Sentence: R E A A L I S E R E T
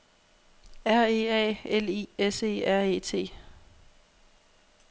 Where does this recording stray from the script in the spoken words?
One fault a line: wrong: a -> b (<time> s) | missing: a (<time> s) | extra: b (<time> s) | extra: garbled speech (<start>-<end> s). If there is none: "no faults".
missing: A (1.6 s)